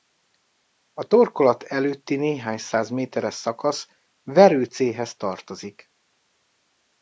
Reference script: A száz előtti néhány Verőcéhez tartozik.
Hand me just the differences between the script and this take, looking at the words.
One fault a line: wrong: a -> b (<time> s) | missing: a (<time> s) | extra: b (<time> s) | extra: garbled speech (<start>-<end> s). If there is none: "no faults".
wrong: száz -> torkolat (1.0 s)
extra: száz méteres szakasz (2.6 s)